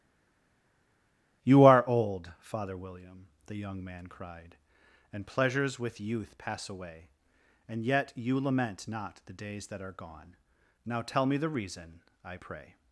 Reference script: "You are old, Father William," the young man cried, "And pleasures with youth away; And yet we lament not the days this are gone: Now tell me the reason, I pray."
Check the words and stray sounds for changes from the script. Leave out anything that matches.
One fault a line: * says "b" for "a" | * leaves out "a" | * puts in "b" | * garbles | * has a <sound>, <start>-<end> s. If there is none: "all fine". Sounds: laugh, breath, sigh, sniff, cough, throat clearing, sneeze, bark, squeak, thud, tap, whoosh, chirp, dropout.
* puts in "pass"
* says "you" for "we"
* says "that" for "this"